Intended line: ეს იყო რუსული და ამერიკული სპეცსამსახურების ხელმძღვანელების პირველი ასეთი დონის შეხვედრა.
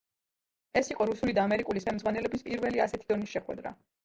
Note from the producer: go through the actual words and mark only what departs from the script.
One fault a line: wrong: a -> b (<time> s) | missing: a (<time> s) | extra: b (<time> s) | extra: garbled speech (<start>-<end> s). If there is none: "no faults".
missing: სპეცსამსახურების (1.8 s)